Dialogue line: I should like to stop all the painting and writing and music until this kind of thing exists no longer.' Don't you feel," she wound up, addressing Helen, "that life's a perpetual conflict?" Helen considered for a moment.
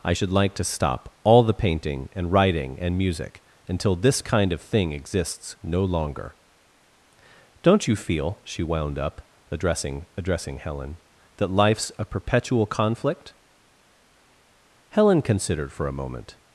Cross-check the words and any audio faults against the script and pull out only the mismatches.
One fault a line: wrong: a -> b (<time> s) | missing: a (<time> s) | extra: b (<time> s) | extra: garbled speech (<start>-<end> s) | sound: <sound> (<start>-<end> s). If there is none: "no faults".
extra: addressing (10.2 s)